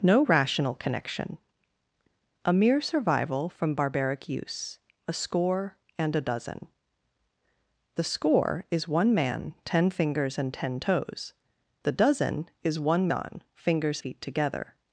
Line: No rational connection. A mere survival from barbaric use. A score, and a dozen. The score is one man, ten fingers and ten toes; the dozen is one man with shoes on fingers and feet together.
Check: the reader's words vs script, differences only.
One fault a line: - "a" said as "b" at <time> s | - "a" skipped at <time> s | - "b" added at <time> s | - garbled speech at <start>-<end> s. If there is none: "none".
- "man with shoes" skipped at 13.1 s
- "and" skipped at 14.0 s